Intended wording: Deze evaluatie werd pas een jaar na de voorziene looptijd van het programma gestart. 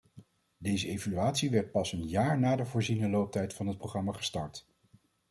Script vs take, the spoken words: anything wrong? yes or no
no